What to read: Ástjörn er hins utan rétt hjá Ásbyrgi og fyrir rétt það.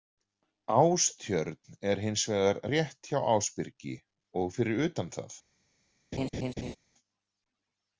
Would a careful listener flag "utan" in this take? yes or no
yes